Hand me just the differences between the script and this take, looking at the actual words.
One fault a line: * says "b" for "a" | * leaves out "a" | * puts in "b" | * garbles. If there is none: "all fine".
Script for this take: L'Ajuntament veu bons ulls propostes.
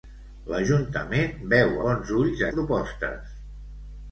all fine